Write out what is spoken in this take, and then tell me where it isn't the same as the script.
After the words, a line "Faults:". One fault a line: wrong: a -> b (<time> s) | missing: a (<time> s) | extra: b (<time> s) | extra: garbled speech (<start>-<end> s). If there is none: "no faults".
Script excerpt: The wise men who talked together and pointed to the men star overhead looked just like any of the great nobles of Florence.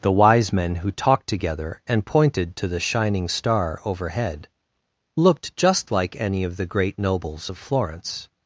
The wise men who talked together and pointed to the shining star overhead looked just like any of the great nobles of Florence.
Faults:
wrong: men -> shining (2.8 s)